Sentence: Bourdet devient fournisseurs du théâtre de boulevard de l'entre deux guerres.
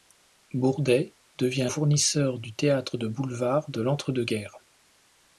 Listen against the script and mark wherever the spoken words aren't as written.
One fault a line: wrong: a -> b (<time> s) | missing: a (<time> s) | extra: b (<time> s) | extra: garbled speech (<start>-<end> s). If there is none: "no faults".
no faults